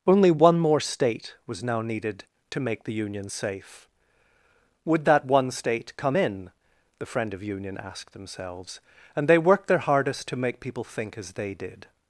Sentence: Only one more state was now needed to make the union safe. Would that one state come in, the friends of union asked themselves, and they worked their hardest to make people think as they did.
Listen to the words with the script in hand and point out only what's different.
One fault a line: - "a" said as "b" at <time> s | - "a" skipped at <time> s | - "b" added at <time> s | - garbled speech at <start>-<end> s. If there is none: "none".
- "friends" said as "friend" at 7.1 s